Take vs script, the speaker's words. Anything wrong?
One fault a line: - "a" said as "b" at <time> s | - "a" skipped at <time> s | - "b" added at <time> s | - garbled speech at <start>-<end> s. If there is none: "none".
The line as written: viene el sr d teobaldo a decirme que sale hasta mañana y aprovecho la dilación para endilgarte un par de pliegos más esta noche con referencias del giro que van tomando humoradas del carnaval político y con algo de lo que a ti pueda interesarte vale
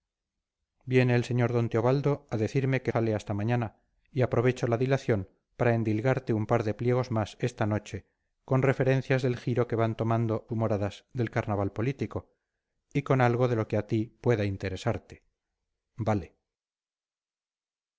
none